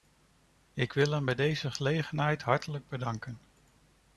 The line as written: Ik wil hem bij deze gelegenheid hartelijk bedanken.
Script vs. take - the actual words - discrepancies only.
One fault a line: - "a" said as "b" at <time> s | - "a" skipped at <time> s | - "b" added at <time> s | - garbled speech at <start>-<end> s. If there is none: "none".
none